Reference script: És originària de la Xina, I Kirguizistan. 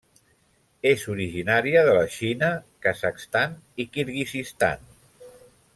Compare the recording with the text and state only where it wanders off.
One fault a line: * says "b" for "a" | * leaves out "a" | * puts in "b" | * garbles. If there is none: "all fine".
* puts in "Kazakhstan"